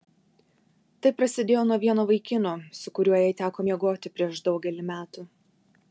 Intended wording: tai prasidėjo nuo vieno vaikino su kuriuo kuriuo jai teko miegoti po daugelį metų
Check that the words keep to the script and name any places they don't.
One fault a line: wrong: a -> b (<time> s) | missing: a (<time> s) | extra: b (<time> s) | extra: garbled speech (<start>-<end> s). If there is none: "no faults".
missing: kuriuo (3.2 s)
wrong: po -> prieš (4.2 s)